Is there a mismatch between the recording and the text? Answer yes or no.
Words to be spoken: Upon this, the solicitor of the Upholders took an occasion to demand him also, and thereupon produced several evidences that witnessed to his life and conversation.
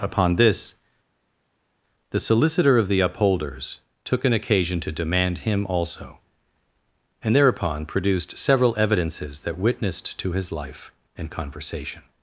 no